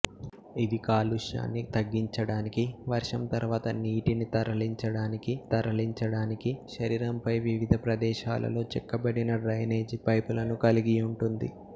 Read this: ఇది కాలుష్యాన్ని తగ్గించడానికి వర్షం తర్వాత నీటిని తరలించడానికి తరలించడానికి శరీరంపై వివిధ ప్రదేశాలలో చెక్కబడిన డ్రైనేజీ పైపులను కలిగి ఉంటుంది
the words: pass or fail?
pass